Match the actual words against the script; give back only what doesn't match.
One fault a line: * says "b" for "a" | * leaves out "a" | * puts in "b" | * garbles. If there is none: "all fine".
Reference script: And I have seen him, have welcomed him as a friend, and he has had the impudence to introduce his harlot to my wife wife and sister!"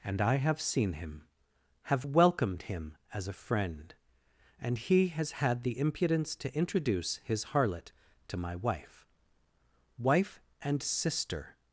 all fine